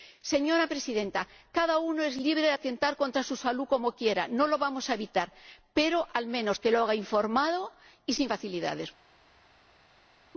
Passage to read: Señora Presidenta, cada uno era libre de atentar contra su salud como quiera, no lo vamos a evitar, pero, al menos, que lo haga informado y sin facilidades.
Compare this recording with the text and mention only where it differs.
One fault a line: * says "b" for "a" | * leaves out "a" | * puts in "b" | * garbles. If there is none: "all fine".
* says "es" for "era"